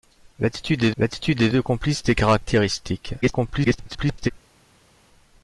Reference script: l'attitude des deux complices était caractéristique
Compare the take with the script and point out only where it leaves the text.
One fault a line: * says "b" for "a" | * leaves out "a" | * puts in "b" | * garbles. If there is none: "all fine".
* puts in "l'attitude des"
* garbles